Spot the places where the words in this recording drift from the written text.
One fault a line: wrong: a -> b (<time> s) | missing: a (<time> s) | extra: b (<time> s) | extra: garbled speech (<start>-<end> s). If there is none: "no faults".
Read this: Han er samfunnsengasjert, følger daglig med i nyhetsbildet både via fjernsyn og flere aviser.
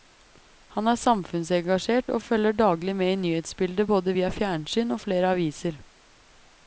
extra: og (2.1 s)